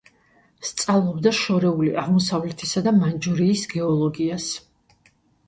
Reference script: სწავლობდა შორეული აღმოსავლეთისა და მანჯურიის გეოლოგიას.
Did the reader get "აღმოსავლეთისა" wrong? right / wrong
right